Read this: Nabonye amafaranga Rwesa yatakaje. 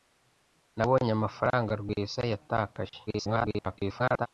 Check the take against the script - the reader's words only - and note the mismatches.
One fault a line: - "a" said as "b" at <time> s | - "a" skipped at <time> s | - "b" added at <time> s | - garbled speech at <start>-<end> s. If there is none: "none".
- garbled speech at 3.1-4.3 s